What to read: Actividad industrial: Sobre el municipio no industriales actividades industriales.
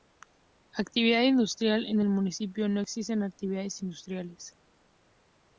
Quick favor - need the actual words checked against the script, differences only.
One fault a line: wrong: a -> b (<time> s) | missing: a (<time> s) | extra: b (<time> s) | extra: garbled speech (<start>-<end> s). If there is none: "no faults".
wrong: Sobre -> En (1.9 s)
wrong: industriales -> existen (2.8 s)